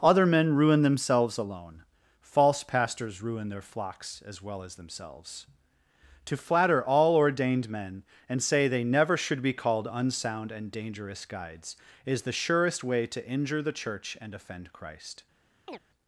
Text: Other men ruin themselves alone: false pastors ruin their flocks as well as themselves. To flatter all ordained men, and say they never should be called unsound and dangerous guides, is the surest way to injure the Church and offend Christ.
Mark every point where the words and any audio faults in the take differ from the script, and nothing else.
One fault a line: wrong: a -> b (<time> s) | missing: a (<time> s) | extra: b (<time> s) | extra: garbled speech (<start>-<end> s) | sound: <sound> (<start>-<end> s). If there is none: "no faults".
sound: chirp (15.7-15.8 s)